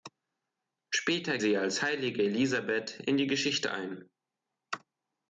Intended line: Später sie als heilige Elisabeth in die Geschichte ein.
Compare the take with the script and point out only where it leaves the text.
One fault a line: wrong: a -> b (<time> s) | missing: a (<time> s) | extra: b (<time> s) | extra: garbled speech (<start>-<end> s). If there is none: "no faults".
no faults